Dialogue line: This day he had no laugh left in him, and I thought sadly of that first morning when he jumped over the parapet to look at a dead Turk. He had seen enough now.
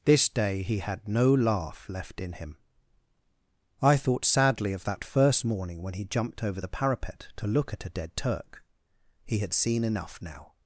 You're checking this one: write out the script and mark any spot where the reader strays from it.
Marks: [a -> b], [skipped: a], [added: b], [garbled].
This day he had no laugh left in him, [skipped: and] I thought sadly of that first morning when he jumped over the parapet to look at a dead Turk. He had seen enough now.